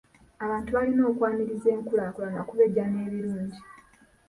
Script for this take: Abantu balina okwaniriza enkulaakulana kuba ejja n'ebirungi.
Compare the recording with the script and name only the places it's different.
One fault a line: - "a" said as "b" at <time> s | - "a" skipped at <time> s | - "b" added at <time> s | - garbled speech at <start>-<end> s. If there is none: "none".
none